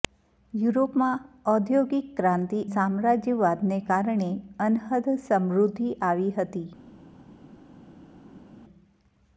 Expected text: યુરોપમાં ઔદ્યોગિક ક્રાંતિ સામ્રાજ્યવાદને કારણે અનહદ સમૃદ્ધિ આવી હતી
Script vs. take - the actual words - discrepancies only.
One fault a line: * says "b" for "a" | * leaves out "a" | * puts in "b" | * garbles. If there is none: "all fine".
all fine